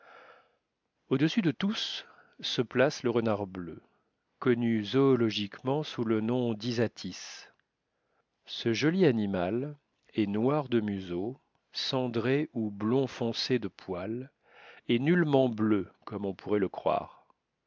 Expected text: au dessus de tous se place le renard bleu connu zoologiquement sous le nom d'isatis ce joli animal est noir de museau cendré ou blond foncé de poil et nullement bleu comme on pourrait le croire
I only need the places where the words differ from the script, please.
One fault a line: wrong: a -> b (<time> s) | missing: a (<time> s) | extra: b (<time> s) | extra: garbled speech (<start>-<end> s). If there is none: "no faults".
no faults